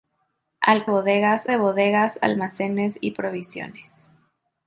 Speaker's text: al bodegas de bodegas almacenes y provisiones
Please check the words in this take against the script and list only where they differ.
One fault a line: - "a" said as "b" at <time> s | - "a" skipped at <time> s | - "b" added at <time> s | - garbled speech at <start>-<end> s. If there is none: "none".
none